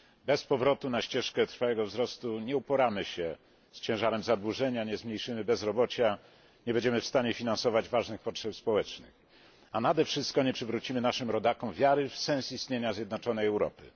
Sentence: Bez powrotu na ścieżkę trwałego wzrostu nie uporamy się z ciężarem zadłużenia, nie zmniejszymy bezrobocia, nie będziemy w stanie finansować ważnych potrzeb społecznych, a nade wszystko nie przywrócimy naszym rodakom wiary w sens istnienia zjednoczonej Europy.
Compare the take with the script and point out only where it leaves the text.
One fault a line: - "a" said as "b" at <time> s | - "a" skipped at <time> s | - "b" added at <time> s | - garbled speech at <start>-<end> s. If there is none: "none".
none